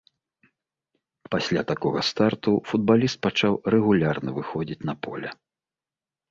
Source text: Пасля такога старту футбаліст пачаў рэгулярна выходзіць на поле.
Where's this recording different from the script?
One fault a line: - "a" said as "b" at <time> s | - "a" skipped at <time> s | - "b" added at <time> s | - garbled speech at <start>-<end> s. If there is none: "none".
none